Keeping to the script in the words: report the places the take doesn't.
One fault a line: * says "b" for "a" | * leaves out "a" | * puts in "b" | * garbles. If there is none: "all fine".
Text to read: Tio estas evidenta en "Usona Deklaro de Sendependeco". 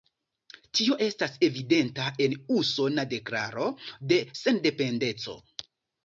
all fine